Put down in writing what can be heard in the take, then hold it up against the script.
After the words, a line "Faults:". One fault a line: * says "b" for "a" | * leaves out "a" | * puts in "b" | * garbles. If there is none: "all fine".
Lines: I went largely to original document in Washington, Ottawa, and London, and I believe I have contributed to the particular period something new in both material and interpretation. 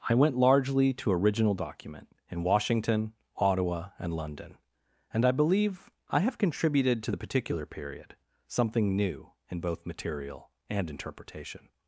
I went largely to original document in Washington, Ottawa, and London, and I believe I have contributed to the particular period something new in both material and interpretation.
Faults:
all fine